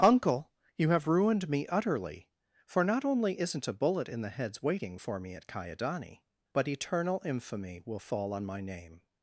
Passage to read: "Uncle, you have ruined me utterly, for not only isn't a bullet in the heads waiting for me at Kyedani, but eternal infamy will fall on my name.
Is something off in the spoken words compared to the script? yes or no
no